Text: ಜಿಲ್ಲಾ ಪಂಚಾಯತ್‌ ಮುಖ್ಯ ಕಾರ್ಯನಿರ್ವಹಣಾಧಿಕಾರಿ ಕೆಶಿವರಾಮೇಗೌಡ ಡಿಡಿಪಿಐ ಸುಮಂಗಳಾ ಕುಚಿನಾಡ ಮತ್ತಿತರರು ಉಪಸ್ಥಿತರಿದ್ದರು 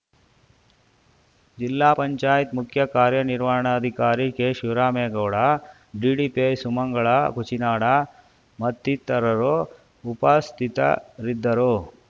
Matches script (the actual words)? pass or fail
pass